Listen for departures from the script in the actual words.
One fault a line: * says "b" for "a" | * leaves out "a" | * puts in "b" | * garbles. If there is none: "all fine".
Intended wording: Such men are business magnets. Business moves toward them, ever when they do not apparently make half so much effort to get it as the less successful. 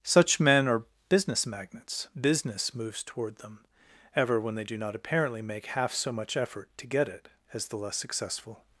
all fine